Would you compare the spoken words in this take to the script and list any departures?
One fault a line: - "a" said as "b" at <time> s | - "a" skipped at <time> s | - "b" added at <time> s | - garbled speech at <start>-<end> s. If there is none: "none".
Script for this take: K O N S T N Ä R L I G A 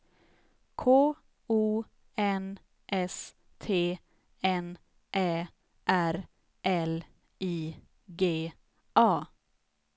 none